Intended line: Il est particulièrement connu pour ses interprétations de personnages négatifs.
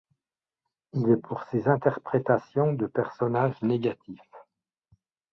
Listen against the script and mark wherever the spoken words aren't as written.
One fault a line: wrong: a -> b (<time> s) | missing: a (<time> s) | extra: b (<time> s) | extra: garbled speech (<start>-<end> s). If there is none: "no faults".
missing: particulièrement connu (1.2 s)